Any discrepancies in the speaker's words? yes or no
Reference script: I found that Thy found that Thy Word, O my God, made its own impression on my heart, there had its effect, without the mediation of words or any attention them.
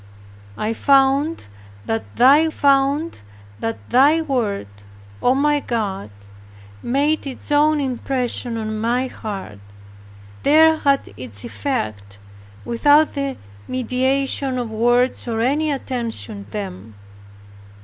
no